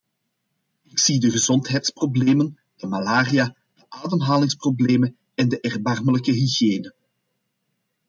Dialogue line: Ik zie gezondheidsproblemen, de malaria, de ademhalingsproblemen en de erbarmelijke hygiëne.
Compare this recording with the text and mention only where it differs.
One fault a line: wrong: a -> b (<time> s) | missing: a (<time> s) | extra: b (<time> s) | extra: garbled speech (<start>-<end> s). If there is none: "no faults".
extra: de (1.2 s)